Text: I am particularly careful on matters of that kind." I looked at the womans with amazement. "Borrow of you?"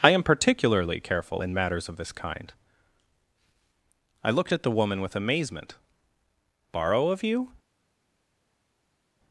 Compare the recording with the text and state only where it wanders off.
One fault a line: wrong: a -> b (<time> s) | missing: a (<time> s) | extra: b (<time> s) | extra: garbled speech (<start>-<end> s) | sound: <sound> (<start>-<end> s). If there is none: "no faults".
wrong: on -> in (1.4 s)
wrong: that -> this (2.0 s)
wrong: womans -> woman (4.8 s)